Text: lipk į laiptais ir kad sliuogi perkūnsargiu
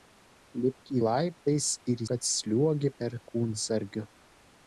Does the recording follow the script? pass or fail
pass